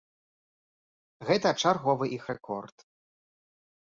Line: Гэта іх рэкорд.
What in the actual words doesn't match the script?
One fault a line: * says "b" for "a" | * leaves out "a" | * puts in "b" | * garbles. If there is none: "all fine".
* puts in "чарговы"